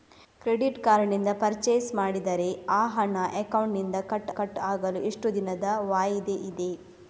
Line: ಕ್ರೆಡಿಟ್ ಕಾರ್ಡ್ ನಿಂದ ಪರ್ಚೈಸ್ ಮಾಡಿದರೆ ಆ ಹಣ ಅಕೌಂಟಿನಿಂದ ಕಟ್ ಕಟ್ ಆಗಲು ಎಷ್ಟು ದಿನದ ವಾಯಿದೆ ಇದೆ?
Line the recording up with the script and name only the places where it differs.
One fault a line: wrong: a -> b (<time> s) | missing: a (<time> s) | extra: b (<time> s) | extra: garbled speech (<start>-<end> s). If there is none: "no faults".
no faults